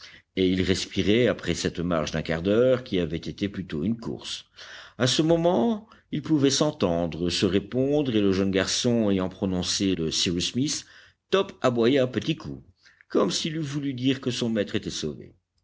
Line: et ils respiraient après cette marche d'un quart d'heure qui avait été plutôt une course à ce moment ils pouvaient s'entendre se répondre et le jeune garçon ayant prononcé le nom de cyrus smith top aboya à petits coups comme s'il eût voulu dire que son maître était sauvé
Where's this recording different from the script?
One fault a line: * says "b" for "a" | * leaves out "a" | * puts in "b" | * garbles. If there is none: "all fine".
* leaves out "le nom"